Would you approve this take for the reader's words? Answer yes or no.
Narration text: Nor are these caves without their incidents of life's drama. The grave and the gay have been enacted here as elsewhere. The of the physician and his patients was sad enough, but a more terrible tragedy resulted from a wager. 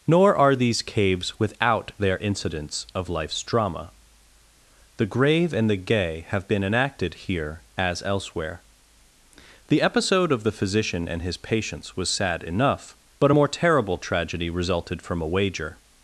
no